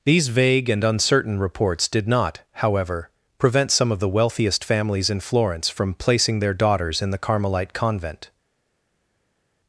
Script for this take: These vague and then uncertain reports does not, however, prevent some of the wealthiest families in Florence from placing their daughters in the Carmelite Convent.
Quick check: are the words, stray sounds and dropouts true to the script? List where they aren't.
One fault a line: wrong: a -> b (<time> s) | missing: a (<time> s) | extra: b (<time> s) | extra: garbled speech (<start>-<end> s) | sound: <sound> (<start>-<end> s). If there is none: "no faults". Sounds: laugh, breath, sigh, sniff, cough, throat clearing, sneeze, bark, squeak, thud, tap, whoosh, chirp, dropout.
missing: then (0.8 s)
wrong: does -> did (1.9 s)